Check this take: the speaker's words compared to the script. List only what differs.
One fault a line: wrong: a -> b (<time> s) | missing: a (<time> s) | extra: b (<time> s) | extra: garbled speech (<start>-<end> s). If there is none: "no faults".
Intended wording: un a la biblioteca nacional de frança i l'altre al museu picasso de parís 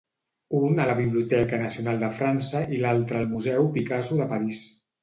no faults